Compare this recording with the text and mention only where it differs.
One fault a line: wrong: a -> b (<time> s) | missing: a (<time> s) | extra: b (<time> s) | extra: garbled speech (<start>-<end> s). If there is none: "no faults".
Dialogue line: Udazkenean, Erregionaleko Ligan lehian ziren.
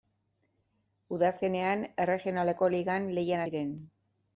no faults